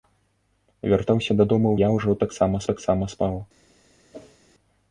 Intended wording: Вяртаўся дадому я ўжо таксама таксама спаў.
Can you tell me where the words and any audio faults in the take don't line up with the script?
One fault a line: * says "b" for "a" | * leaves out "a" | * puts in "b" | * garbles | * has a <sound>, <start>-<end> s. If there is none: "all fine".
* has a whoosh, 4.1-4.4 s